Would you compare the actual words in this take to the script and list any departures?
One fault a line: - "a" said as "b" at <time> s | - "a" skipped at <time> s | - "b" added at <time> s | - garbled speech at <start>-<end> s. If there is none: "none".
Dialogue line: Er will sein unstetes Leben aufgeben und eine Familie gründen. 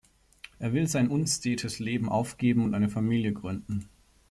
none